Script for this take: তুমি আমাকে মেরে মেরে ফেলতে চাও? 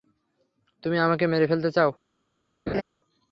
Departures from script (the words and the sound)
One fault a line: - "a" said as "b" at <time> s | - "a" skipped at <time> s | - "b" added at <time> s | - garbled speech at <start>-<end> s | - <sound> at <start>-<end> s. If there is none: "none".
- "মেরে" skipped at 1.4 s
- laugh at 2.7-2.8 s